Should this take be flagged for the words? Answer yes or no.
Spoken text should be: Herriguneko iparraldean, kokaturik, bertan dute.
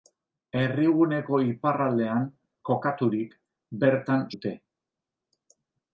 no